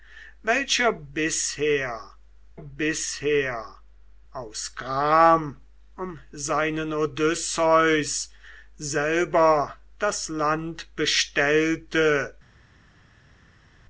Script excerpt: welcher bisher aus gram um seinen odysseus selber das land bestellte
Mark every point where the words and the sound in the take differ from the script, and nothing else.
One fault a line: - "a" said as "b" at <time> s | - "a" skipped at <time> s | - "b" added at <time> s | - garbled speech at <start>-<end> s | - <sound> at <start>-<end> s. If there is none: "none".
- "bisher" added at 2.5 s